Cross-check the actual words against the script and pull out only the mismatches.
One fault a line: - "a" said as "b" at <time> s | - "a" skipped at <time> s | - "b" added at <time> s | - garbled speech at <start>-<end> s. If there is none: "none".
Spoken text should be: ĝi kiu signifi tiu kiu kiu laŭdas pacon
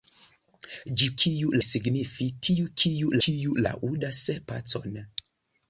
none